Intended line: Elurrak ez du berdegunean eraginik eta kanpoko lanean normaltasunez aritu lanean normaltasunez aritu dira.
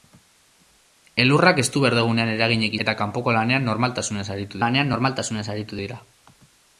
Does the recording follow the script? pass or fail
pass